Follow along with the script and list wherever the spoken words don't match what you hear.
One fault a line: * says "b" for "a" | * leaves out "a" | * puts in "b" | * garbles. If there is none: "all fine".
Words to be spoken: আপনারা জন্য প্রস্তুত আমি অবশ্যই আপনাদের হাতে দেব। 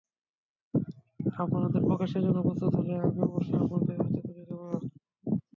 * puts in "প্রকাশের"
* puts in "হলে"
* puts in "তুলে"